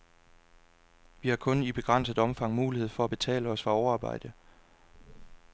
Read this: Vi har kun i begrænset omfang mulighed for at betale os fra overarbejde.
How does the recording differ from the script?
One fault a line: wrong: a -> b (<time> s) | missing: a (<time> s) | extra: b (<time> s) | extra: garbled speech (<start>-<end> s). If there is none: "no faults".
no faults